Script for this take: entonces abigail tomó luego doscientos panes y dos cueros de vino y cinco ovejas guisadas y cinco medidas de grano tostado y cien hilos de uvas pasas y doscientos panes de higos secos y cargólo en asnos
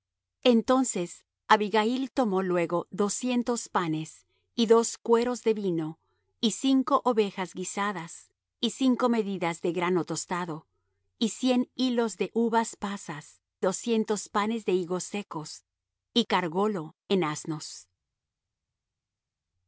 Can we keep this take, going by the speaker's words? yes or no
no